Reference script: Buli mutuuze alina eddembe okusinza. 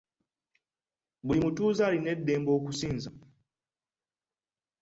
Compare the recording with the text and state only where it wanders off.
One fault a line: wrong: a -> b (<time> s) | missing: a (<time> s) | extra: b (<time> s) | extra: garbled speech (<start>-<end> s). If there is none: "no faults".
no faults